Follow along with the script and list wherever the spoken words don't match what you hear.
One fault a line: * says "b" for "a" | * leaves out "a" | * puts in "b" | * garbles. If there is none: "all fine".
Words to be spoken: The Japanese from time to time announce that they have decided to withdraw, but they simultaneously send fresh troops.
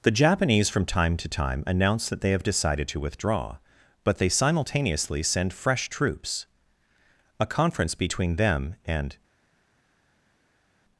* puts in "A conference between them and"